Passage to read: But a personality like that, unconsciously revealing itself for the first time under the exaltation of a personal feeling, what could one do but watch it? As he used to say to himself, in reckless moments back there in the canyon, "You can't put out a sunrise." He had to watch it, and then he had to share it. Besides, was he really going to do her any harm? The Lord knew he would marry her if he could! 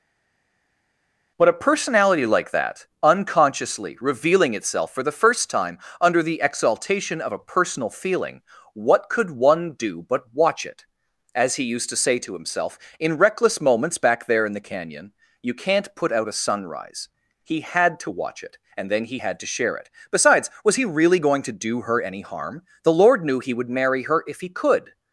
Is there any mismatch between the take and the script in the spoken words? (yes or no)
no